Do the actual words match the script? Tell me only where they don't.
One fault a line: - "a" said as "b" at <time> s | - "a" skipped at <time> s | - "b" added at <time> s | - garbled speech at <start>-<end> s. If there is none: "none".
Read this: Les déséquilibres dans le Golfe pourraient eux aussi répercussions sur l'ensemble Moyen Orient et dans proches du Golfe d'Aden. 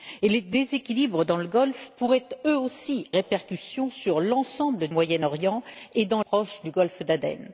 none